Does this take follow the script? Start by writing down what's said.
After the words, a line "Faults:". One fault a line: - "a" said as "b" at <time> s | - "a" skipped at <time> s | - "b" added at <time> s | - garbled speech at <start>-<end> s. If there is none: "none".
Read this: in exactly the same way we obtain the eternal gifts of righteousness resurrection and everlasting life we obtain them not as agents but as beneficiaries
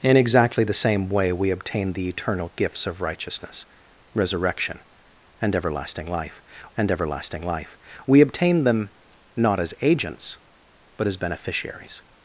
in exactly the same way we obtain the eternal gifts of righteousness resurrection and everlasting life and everlasting life we obtain them not as agents but as beneficiaries
Faults:
- "and everlasting life" added at 6.8 s